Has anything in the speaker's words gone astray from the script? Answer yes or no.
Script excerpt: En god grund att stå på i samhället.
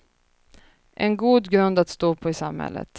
no